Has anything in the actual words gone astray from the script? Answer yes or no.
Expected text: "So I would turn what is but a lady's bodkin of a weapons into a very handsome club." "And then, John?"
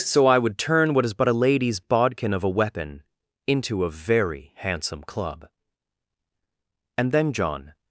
yes